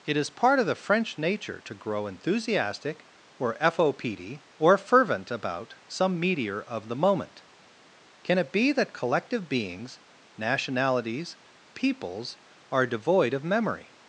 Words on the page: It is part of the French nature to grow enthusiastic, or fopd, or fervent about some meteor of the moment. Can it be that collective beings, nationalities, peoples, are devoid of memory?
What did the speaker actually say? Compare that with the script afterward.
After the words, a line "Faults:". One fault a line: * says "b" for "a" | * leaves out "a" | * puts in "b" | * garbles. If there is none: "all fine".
It is part of the French nature to grow enthusiastic, or fopd, or fervent about some meteor of the moment. Can it be that collective beings, nationalities, peoples, are devoid of memory?
Faults:
all fine